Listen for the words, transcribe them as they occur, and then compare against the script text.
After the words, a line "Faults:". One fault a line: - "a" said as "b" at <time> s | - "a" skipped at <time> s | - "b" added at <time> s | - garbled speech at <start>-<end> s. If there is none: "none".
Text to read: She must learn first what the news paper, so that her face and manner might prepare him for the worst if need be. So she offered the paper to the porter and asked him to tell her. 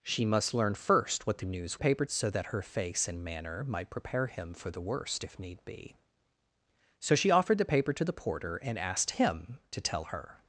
She must learn first what the news paper, so that her face and manner might prepare him for the worst if need be. So she offered the paper to the porter and asked him to tell her.
Faults:
none